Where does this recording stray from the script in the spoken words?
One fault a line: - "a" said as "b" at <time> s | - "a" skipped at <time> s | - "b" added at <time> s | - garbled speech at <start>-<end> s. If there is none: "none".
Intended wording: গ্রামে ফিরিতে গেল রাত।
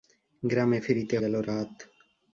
none